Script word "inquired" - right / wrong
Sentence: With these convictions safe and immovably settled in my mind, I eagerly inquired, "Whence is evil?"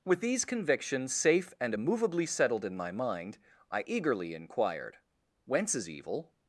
right